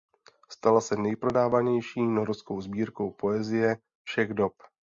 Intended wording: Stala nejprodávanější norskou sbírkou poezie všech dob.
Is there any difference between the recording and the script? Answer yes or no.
yes